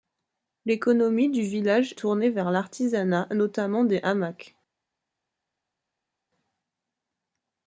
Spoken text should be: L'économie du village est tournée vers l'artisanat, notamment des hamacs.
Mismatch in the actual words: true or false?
true